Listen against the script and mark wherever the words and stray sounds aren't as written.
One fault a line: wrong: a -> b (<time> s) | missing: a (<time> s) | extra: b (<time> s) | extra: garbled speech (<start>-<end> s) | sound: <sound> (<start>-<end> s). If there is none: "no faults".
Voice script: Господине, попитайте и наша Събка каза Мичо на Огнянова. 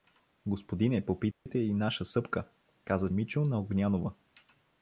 sound: dropout (1.3-1.5 s)